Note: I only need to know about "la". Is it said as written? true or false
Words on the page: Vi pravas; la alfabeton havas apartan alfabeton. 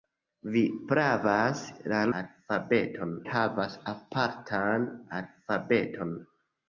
true